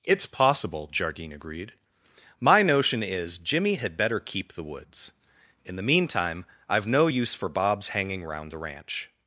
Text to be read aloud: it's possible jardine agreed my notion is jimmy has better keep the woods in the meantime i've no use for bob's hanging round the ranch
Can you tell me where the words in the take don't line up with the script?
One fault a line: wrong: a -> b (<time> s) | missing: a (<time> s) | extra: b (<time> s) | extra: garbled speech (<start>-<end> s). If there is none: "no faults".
wrong: has -> had (3.8 s)